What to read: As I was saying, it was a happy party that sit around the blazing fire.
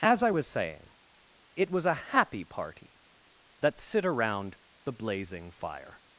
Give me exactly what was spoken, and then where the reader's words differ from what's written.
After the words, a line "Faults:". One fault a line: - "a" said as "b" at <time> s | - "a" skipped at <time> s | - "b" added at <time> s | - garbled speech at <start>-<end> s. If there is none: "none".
As I was saying, it was a happy party that sit around the blazing fire.
Faults:
none